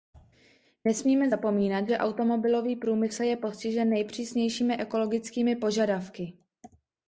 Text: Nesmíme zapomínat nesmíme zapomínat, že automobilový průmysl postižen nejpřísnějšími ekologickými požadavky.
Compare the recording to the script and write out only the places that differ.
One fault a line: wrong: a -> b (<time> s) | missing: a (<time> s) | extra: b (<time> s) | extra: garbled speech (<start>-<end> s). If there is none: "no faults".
missing: nesmíme zapomínat (1.9 s)
extra: je (3.2 s)